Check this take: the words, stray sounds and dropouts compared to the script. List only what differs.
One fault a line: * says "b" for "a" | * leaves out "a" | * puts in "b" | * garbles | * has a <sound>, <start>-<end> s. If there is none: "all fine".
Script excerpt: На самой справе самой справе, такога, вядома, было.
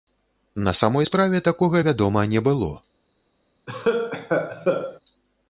* leaves out "самой справе"
* puts in "не"
* has a cough, 3.7-5.0 s